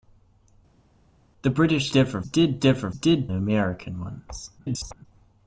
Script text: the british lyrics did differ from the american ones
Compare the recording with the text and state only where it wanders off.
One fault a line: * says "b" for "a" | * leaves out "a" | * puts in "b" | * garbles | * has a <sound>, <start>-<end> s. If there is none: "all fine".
* says "differ" for "lyrics"
* says "did" for "from"
* garbles